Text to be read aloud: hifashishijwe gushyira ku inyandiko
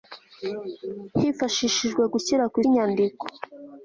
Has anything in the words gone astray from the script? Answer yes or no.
no